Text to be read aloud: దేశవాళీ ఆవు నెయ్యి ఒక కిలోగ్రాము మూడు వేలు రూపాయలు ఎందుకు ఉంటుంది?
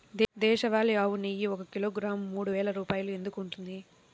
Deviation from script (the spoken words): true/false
false